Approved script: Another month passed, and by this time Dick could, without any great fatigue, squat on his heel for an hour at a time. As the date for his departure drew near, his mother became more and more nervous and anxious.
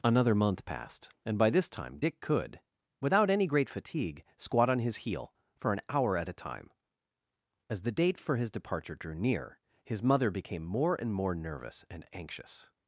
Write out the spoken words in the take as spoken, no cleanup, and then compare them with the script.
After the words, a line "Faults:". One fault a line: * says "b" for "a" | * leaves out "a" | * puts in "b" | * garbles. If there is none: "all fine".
Another month passed, and by this time Dick could, without any great fatigue, squat on his heel for an hour at a time. As the date for his departure drew near, his mother became more and more nervous and anxious.
Faults:
all fine